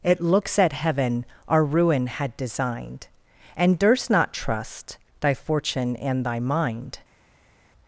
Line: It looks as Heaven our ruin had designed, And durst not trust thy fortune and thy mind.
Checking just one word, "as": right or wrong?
wrong